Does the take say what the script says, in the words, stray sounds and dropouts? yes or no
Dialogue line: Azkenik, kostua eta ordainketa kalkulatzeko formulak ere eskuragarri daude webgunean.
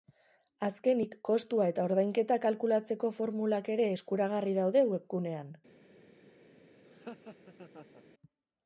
no